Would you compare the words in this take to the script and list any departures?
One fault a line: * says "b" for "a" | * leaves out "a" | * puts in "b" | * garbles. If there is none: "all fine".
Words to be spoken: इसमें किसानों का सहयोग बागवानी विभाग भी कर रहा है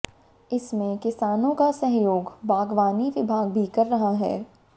all fine